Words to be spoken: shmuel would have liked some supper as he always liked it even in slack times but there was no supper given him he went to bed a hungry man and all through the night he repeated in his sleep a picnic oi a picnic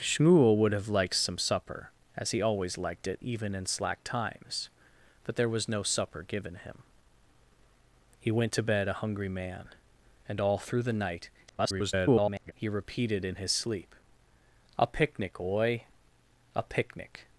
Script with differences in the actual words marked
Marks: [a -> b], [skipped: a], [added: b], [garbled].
shmuel would have liked some supper as he always liked it even in slack times but there was no supper given him he went to bed a hungry man and all through the night [garbled] he repeated in his sleep a picnic oi a picnic